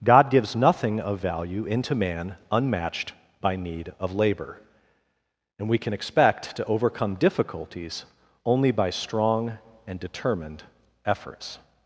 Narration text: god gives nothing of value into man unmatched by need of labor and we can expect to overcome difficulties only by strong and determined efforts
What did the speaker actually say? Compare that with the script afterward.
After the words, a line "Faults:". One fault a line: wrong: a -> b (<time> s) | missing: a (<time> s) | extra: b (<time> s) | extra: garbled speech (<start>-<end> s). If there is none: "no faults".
god gives nothing of value into man unmatched by need of labor and we can expect to overcome difficulties only by strong and determined efforts
Faults:
no faults